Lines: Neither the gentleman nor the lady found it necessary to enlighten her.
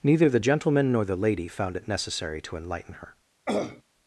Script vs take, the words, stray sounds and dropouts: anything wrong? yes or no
yes